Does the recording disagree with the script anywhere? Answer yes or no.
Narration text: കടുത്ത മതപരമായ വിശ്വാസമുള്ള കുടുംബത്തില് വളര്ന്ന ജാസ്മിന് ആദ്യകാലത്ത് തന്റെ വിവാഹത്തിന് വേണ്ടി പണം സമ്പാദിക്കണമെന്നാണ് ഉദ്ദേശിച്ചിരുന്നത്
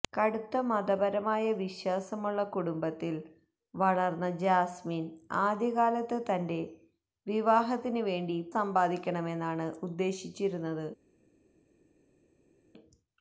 yes